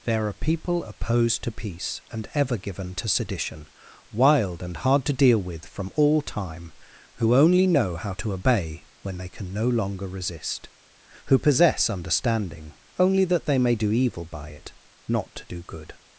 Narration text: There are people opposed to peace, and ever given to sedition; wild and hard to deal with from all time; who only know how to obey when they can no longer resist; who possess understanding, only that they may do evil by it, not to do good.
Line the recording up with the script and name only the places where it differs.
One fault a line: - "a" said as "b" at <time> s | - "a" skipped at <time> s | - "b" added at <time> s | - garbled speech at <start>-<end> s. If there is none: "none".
none